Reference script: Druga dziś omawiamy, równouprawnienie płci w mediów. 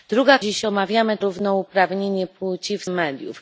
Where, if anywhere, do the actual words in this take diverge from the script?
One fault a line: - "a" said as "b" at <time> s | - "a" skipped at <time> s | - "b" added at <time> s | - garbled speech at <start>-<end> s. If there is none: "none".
none